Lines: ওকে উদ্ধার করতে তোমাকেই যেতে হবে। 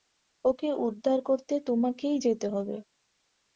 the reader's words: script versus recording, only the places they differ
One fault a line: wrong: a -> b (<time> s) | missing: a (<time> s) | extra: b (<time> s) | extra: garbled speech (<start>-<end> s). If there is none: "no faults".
no faults